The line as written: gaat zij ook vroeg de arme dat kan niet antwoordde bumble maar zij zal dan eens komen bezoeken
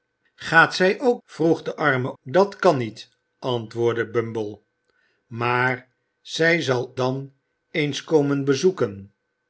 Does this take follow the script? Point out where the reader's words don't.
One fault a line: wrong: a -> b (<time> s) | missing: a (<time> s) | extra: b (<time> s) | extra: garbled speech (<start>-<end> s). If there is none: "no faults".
no faults